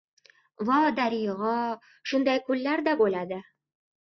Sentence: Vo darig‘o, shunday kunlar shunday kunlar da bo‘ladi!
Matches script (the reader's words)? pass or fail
fail